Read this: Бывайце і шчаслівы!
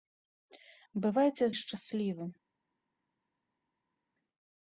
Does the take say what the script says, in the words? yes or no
yes